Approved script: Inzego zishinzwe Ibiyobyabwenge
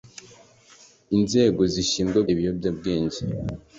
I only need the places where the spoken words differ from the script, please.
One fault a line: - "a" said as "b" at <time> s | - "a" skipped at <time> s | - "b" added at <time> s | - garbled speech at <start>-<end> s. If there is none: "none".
none